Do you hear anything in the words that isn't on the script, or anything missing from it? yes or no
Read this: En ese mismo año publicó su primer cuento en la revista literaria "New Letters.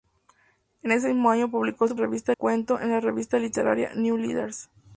yes